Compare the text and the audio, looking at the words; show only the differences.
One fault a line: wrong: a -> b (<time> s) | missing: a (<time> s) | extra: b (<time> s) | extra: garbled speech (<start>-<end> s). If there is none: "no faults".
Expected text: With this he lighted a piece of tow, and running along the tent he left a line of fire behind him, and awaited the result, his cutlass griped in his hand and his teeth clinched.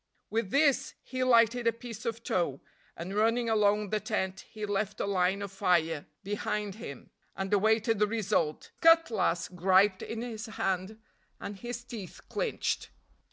missing: his (8.7 s)